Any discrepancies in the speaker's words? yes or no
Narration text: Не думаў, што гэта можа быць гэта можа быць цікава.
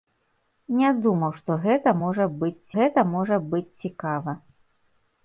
no